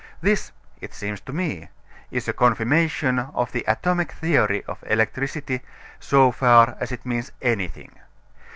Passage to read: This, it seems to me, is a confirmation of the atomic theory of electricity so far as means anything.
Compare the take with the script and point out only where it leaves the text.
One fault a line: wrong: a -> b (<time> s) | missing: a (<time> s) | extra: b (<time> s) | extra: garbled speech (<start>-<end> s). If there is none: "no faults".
extra: it (6.9 s)